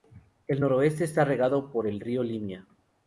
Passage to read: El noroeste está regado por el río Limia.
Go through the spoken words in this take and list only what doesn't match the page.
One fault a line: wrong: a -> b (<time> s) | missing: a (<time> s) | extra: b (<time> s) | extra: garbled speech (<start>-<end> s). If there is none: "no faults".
no faults